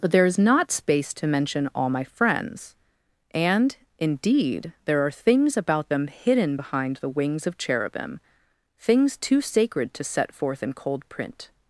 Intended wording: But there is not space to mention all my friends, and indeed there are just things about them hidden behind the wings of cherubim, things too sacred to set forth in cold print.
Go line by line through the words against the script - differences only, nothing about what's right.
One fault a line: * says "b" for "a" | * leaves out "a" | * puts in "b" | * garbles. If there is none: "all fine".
* leaves out "just"